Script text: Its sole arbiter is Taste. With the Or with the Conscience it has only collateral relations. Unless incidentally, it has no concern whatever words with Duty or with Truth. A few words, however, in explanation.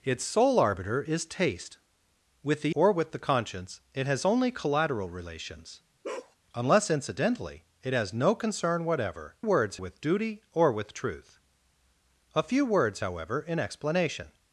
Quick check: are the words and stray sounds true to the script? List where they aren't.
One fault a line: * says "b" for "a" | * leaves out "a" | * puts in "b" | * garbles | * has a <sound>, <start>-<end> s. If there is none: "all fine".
* has a bark, 6.0-6.4 s